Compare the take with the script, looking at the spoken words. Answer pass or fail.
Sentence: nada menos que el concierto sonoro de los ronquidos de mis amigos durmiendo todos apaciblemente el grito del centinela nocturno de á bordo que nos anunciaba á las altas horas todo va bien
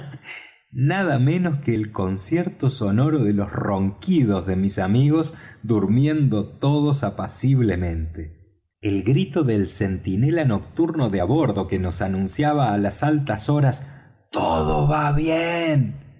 pass